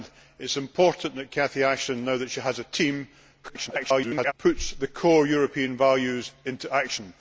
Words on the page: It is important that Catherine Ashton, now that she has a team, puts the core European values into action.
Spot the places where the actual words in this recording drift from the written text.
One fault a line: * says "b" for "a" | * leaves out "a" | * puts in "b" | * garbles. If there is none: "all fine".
* garbles